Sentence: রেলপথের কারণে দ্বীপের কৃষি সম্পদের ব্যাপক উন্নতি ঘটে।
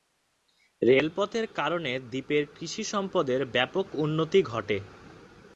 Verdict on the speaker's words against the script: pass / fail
pass